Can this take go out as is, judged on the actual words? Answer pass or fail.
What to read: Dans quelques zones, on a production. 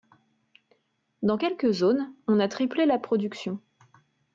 fail